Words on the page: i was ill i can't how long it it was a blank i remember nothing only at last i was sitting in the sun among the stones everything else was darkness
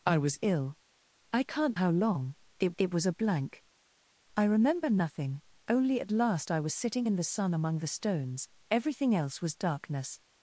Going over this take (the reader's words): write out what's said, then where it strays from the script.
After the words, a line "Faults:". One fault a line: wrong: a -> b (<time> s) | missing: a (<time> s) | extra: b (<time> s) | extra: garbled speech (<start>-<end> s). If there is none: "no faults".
i was ill i can't how long it it was a blank i remember nothing only at last i was sitting in the sun among the stones everything else was darkness
Faults:
no faults